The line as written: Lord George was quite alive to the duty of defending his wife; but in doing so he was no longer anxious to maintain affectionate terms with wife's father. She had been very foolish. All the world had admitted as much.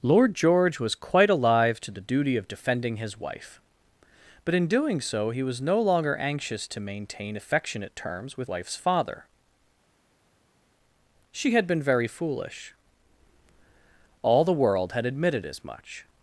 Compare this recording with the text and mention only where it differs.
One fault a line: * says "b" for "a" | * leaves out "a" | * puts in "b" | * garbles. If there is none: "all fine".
all fine